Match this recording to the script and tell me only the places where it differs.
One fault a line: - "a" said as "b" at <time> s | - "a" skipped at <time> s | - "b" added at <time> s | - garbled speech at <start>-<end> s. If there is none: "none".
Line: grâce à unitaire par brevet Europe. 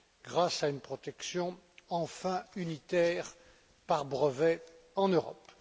- "une protection enfin" added at 0.7 s
- "en" added at 4.9 s